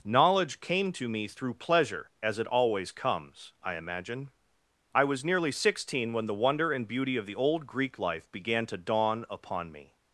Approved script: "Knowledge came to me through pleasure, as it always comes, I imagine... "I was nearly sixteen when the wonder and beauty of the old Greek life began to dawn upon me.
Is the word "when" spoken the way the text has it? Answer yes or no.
yes